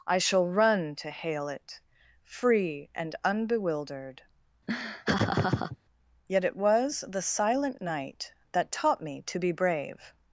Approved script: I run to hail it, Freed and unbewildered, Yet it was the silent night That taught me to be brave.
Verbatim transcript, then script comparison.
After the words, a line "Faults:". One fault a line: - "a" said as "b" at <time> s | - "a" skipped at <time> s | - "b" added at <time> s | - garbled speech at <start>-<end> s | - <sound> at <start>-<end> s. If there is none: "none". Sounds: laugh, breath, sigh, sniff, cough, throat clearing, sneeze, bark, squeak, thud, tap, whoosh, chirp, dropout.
I shall run to hail it, Free and unbewildered, Yet it was the silent night That taught me to be brave.
Faults:
- "shall" added at 0.2 s
- "Freed" said as "Free" at 2.2 s
- laugh at 4.7-5.8 s